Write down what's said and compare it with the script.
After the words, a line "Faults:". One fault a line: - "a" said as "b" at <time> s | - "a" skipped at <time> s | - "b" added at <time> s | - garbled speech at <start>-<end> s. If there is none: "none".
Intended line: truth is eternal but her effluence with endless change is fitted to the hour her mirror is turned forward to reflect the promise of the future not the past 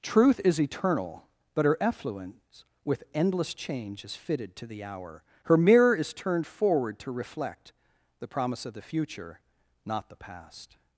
truth is eternal but her effluence with endless change is fitted to the hour her mirror is turned forward to reflect the promise of the future not the past
Faults:
none